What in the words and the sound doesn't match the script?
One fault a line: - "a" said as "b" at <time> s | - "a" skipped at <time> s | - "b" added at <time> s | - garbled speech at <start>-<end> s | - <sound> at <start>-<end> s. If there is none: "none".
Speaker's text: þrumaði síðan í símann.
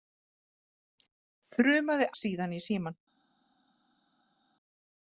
none